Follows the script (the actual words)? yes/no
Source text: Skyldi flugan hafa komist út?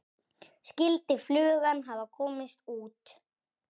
yes